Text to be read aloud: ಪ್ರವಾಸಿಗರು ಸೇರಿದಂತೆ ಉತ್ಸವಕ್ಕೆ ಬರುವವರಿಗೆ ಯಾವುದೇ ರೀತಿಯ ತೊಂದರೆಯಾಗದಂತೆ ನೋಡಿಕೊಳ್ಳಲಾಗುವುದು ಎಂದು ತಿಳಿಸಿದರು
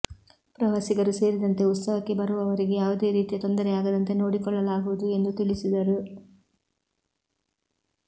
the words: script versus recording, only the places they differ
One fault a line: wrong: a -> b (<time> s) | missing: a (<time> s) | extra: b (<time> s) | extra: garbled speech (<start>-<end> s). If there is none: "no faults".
no faults